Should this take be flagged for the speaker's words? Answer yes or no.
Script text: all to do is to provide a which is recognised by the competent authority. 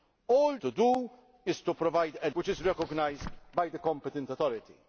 no